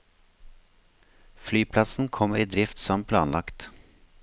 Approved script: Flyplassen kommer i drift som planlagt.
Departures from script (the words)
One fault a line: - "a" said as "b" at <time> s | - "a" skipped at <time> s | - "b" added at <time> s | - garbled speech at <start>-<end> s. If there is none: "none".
none